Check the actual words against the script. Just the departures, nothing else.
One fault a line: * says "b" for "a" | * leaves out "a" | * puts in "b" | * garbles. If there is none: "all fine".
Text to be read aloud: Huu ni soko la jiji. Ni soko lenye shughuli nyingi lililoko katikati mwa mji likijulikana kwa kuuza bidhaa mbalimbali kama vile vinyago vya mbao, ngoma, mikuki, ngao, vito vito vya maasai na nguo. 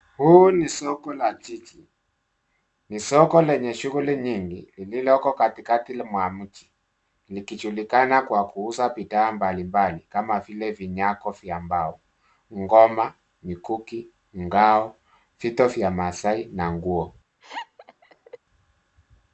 * leaves out "vito"